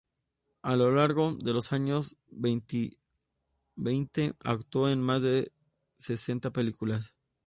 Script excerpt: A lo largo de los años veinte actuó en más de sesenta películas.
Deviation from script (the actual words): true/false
false